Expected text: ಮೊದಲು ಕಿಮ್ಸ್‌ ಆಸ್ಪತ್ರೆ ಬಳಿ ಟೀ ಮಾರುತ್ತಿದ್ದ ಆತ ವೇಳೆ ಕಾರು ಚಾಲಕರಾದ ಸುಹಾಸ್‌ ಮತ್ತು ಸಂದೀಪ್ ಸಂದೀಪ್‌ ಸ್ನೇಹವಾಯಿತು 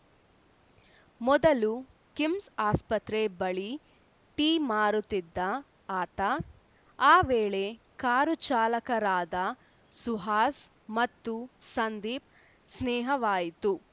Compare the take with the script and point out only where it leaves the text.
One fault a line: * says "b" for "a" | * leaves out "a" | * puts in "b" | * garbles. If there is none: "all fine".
* puts in "ಆ"
* leaves out "ಸಂದೀಪ್"